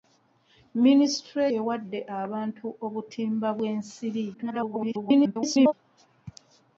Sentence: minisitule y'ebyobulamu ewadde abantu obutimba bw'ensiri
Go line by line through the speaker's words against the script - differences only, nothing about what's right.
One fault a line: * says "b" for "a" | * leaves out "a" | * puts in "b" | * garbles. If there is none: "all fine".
* leaves out "y'ebyobulamu"
* garbles